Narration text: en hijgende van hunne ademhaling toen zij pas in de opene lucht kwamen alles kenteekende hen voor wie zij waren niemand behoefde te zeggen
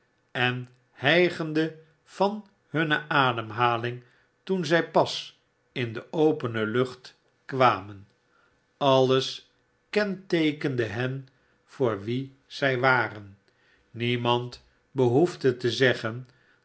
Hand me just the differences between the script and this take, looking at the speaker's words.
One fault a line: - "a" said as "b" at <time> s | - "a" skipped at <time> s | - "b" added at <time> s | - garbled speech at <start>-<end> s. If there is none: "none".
none